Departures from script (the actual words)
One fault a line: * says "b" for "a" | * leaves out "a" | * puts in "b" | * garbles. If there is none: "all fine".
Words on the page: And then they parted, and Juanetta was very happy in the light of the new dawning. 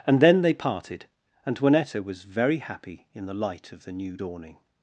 all fine